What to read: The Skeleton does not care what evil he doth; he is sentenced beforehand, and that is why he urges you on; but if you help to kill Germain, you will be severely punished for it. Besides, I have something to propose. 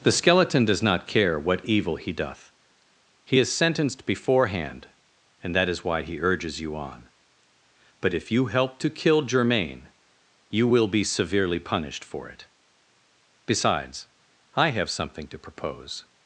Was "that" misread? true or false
false